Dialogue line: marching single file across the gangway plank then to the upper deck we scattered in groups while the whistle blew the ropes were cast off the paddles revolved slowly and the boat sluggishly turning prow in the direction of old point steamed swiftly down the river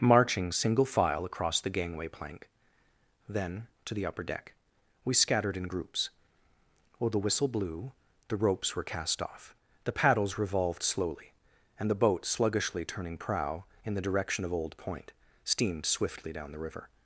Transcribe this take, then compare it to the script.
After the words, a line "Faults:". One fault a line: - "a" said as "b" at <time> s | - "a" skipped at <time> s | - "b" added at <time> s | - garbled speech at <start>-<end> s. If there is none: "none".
marching single file across the gangway plank then to the upper deck we scattered in groups while the whistle blew the ropes were cast off the paddles revolved slowly and the boat sluggishly turning prow in the direction of old point steamed swiftly down the river
Faults:
none